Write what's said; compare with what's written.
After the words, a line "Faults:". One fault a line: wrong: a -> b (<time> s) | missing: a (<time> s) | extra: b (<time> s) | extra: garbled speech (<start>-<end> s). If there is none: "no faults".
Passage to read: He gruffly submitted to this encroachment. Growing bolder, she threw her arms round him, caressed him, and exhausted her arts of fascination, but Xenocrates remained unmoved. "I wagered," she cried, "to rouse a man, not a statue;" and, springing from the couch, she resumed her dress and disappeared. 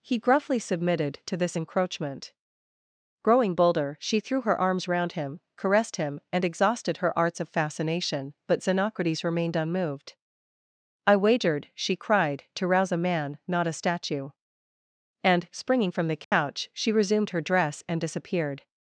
He gruffly submitted to this encroachment. Growing bolder, she threw her arms round him, caressed him, and exhausted her arts of fascination, but Xenocrates remained unmoved. "I wagered," she cried, "to rouse a man, not a statue;" and, springing from the couch, she resumed her dress and disappeared.
Faults:
no faults